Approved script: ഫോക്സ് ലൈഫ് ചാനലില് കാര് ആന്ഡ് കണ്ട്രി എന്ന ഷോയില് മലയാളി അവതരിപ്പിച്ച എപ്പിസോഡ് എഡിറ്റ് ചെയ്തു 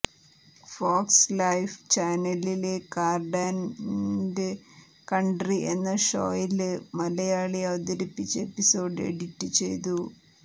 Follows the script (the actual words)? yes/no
yes